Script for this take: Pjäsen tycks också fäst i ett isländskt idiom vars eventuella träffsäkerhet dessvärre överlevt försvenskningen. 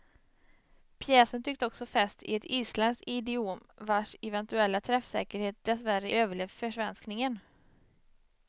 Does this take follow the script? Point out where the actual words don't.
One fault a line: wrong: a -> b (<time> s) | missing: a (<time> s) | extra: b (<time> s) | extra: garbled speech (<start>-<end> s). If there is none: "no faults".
no faults